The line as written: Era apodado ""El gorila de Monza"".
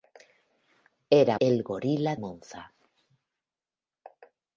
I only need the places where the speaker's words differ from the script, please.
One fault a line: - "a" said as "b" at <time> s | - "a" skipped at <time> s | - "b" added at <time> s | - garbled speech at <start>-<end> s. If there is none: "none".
- "apodado" skipped at 1.4 s
- "de" skipped at 2.1 s